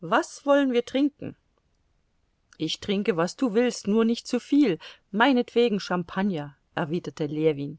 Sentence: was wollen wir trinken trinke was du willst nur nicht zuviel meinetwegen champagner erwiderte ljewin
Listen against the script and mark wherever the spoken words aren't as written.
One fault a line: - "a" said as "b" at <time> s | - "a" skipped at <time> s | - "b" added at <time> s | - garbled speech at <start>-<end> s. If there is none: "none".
- "ich" added at 2.6 s